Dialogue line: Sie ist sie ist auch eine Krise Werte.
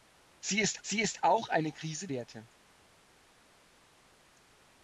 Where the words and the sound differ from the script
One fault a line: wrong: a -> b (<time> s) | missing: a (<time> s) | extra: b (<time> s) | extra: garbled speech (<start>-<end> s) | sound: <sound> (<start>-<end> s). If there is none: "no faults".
no faults